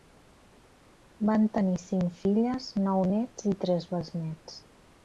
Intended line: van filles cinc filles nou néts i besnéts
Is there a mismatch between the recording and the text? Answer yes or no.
yes